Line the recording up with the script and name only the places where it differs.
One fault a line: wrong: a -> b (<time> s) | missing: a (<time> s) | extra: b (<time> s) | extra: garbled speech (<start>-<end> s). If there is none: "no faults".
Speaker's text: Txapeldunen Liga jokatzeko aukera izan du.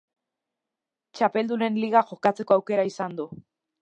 no faults